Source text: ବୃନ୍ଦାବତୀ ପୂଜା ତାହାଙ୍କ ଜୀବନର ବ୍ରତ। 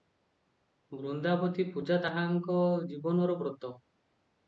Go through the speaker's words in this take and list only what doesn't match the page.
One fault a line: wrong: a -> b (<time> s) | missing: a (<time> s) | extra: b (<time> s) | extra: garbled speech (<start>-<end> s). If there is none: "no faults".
no faults